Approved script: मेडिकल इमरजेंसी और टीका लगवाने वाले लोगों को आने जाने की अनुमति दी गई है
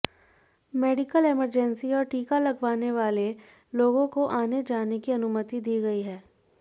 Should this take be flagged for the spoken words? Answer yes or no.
no